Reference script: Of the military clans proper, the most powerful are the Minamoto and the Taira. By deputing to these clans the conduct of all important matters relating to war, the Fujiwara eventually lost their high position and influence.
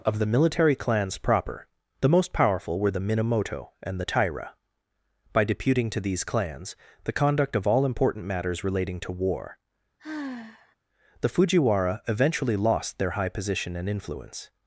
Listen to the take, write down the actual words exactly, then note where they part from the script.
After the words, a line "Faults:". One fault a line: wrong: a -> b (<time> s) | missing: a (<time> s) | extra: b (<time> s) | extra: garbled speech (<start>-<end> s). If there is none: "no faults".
Of the military clans proper, the most powerful were the Minamoto and the Taira. By deputing to these clans the conduct of all important matters relating to war, the Fujiwara eventually lost their high position and influence.
Faults:
wrong: are -> were (2.8 s)